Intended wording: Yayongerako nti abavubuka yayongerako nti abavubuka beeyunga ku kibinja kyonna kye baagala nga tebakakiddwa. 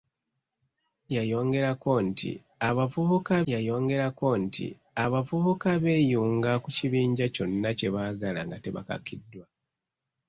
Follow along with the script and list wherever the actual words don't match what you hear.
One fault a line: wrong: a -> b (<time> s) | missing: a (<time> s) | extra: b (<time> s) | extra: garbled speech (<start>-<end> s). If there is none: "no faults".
no faults